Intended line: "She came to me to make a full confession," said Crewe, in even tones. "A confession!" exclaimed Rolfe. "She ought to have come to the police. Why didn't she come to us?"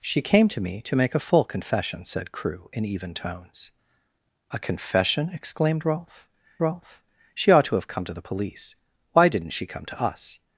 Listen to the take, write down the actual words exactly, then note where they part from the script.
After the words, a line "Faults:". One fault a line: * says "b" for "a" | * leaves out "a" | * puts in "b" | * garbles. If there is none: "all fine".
"She came to me to make a full confession," said Crewe, in even tones. "A confession!" exclaimed Rolfe Rolfe. "She ought to have come to the police. Why didn't she come to us?"
Faults:
* puts in "Rolfe"